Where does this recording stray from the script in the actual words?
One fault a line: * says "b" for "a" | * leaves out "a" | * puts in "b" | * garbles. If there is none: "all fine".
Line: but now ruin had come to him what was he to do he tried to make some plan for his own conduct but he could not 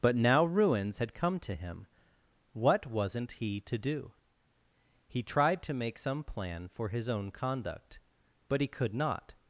* says "ruins" for "ruin"
* says "wasn't" for "was"